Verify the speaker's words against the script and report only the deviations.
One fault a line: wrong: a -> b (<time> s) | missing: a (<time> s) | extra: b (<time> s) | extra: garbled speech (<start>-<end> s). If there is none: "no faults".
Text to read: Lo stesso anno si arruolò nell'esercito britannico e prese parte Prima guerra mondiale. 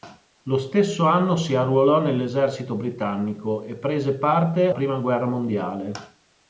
no faults